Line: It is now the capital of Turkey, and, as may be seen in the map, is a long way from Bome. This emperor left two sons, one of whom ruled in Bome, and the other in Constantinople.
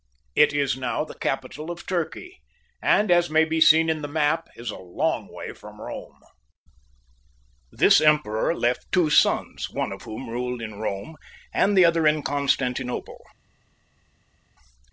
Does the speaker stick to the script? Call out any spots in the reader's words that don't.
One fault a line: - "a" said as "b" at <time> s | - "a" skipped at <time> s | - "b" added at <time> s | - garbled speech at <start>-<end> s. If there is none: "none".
none